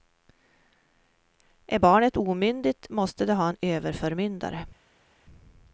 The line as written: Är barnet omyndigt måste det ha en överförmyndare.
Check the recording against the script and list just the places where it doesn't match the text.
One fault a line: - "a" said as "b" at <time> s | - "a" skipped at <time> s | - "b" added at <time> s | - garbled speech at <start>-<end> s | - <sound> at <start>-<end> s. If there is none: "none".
none